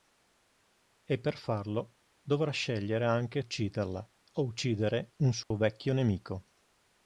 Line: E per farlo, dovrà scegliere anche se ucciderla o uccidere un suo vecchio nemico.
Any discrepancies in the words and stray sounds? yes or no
yes